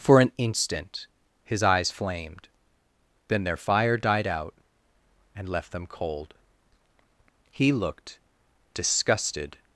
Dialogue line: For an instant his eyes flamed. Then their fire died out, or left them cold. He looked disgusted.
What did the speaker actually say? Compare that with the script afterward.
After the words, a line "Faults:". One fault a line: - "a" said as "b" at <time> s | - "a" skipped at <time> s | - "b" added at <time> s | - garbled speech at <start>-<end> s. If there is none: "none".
For an instant his eyes flamed. Then their fire died out, and left them cold. He looked disgusted.
Faults:
- "or" said as "and" at 5.3 s